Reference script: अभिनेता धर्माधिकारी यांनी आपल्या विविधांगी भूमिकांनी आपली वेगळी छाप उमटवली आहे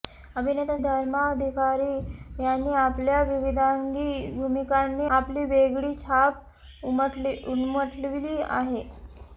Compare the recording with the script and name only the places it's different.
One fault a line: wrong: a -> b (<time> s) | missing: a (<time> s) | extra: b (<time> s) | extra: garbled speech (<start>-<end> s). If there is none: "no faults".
no faults